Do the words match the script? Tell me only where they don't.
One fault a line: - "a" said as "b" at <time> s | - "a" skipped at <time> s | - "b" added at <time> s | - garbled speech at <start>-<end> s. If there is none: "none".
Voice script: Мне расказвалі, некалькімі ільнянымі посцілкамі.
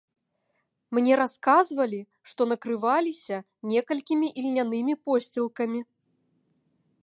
- "што накрываліся" added at 2.3 s